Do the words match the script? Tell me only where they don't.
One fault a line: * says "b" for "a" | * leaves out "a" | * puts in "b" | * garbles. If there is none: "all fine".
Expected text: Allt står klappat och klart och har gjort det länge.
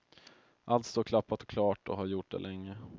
all fine